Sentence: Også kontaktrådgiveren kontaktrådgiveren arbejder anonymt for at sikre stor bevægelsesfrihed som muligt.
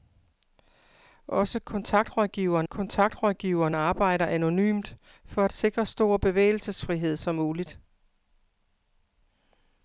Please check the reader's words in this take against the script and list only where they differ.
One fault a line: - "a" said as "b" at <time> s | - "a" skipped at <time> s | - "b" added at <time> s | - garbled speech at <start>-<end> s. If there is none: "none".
none